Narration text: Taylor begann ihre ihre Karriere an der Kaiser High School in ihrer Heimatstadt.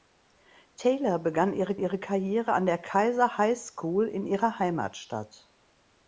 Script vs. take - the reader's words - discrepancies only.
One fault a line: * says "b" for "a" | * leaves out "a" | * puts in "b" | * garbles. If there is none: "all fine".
all fine